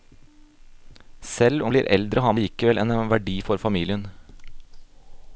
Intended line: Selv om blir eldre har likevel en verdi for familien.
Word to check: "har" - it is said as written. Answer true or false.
true